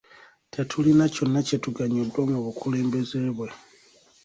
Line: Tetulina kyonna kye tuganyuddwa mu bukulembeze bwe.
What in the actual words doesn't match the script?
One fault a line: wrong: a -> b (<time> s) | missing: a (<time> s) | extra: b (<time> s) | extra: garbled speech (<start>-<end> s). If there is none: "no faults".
no faults